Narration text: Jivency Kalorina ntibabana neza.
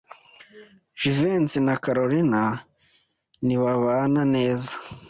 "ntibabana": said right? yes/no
yes